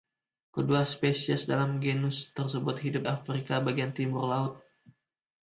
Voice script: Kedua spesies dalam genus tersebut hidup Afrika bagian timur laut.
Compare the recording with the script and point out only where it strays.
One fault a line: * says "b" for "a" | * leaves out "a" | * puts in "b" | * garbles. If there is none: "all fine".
all fine